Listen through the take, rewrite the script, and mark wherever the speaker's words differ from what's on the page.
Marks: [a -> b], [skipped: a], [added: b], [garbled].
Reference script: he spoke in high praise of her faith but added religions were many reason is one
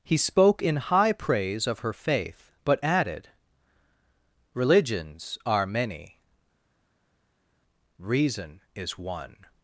he spoke in high praise of her faith but added religions [were -> are] many reason is one